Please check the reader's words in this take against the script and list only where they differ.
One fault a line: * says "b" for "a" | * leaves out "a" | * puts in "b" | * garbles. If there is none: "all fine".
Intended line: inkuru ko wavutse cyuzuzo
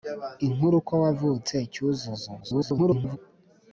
* garbles